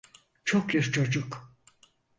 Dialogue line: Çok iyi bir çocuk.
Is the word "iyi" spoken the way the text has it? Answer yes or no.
no